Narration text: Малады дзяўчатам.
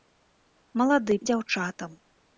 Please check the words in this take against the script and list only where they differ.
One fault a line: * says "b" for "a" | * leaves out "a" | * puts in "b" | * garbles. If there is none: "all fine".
all fine